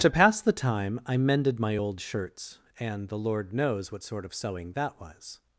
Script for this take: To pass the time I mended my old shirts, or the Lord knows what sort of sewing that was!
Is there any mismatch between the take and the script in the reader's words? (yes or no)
yes